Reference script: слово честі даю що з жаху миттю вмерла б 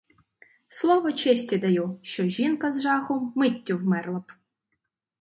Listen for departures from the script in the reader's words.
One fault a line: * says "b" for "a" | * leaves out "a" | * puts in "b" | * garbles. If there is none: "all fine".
* puts in "жінка"